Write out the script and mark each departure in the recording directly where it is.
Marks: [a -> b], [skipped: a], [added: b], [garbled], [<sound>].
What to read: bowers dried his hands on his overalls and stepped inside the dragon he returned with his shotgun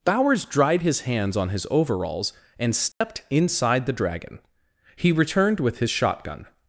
bowers dried his hands on his overalls and stepped [dropout] inside the dragon he returned with his shotgun